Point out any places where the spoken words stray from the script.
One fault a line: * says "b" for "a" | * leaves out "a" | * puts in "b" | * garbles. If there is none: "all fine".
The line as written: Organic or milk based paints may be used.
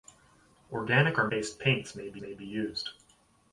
* leaves out "milk"
* puts in "may be"